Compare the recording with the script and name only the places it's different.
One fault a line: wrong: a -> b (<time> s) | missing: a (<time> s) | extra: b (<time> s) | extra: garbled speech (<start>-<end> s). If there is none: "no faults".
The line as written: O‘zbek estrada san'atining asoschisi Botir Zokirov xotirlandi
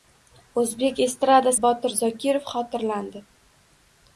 missing: san'atining asoschisi (1.5 s)